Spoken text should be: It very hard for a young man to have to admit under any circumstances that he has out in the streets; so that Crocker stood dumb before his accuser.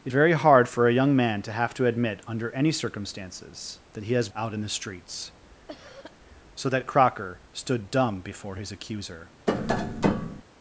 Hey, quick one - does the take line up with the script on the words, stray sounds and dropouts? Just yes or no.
no